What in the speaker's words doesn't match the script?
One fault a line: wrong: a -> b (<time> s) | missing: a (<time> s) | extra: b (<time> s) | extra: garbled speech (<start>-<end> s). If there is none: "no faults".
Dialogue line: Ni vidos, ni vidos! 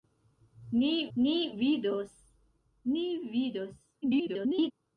extra: ni (1.2 s)
extra: garbled speech (4.0-4.7 s)